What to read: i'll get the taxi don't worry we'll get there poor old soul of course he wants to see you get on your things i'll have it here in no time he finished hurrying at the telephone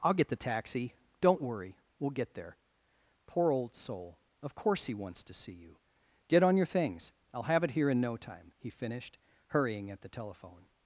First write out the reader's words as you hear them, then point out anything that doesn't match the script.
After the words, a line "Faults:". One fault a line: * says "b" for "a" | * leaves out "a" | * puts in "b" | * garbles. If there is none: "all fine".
i'll get the taxi don't worry we'll get there poor old soul of course he wants to see you get on your things i'll have it here in no time he finished hurrying at the telephone
Faults:
all fine